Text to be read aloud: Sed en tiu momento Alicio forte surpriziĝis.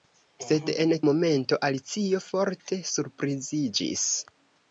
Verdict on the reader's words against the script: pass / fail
fail